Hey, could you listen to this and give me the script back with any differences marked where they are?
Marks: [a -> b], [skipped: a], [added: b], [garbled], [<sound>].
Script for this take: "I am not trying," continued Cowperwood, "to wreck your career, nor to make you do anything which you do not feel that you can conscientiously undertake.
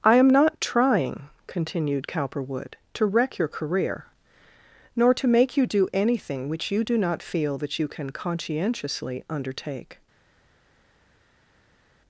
"I am not trying," continued Cowperwood, "to wreck your career, nor to make you do anything which you do not feel that you can conscientiously undertake.